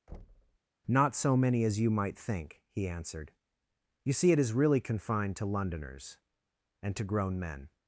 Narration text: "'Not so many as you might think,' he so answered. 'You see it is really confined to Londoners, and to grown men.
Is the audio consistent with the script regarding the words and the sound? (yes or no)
no